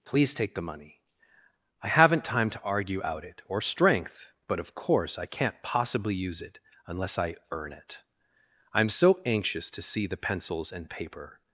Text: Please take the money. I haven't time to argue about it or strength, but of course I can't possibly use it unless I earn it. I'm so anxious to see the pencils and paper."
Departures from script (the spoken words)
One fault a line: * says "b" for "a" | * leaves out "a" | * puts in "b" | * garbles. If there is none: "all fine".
* says "out" for "about"